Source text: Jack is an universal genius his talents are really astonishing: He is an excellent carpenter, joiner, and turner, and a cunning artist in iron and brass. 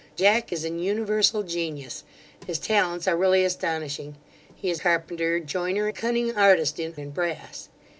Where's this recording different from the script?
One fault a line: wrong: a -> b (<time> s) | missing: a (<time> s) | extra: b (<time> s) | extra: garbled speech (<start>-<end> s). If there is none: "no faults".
missing: an excellent (4.8 s)
missing: and turner and (5.9 s)
missing: iron (7.0 s)